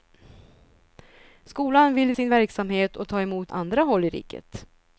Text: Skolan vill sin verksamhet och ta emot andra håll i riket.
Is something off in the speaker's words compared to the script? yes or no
no